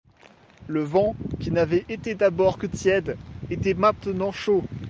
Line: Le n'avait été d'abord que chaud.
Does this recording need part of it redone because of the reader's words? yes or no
yes